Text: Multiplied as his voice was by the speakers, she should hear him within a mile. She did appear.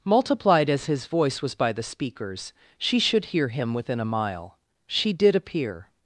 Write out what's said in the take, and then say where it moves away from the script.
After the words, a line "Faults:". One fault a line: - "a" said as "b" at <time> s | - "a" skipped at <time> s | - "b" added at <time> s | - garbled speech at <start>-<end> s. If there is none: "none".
Multiplied as his voice was by the speakers, she should hear him within a mile. She did appear.
Faults:
none